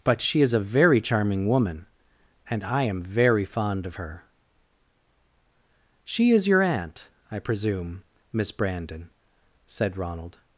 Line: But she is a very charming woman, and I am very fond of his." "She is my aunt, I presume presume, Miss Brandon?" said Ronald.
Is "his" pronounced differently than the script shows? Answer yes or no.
yes